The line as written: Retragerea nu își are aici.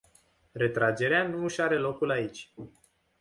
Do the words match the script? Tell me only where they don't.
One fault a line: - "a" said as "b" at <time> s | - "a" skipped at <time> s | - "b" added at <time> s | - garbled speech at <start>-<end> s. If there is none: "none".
- "locul" added at 1.8 s